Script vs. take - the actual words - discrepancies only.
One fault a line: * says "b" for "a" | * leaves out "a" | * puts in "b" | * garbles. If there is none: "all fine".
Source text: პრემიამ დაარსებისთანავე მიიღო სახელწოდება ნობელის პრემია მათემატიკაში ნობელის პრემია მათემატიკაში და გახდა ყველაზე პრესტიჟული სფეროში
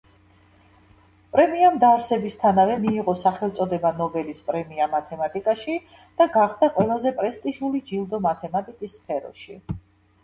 * leaves out "ნობელის პრემია მათემატიკაში"
* puts in "ჯილდო მათემატიკის"